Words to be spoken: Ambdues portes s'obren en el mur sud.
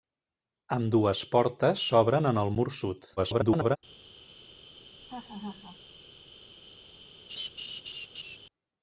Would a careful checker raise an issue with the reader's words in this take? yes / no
yes